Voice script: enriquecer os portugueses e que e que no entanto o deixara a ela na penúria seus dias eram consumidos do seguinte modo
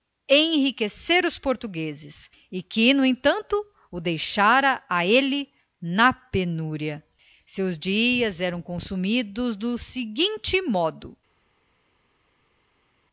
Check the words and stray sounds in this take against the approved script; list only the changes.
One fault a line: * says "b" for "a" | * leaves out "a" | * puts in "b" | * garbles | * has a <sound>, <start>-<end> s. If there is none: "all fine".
* leaves out "e que"
* says "ele" for "ela"